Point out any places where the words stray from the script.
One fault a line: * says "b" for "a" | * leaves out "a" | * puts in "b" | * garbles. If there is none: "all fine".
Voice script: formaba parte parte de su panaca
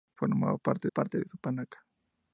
all fine